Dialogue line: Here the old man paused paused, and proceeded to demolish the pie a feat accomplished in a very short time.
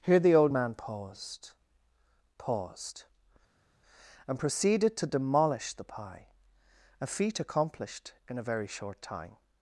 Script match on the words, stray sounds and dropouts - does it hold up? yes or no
yes